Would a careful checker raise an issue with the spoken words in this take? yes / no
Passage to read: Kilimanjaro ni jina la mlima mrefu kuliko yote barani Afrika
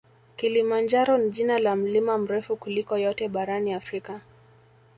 no